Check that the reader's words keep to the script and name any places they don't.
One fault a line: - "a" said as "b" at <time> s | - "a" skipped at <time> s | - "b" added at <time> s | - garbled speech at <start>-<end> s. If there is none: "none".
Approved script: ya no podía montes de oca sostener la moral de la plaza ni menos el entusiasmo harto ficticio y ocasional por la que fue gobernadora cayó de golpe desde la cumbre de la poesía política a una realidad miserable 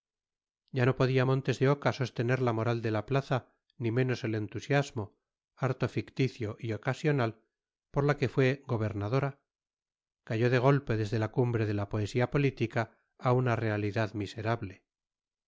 none